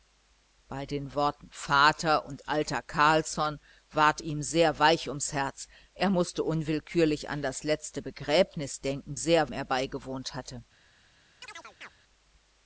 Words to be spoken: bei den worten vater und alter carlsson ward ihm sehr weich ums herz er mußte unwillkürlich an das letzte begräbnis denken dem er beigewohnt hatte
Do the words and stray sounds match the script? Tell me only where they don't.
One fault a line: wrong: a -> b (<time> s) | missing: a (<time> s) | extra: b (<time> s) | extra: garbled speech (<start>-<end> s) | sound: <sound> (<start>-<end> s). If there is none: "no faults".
wrong: dem -> sehr (9.1 s)
sound: chirp (11.4-11.9 s)